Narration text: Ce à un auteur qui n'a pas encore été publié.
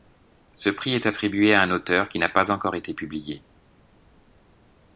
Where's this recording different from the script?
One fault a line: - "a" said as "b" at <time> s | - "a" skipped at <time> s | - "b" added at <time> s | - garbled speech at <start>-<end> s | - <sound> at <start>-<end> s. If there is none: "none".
- "prix est attribué" added at 0.7 s